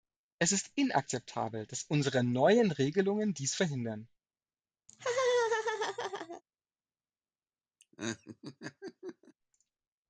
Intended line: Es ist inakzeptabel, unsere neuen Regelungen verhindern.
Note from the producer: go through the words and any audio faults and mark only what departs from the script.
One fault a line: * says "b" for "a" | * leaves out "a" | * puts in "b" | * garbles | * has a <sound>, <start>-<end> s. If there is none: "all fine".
* puts in "dass"
* puts in "dies"
* has a laugh, 4.9-6.4 s
* has a laugh, 7.8-9.3 s